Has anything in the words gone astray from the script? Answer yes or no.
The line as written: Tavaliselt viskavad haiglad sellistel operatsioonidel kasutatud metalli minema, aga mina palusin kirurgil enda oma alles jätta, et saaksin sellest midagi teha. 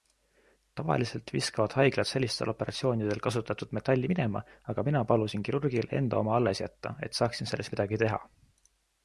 no